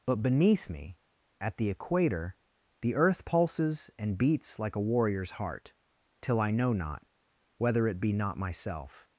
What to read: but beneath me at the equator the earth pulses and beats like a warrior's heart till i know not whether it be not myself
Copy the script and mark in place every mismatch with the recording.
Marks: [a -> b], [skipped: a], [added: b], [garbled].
but beneath me at the equator the earth pulses and beats like a warrior's heart till i know not whether it be not myself